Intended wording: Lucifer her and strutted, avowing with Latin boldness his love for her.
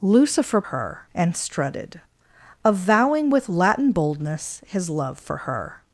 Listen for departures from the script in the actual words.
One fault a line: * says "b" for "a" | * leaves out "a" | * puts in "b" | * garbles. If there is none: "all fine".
all fine